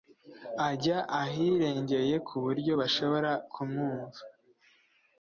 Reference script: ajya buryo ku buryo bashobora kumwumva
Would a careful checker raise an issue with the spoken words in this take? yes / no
yes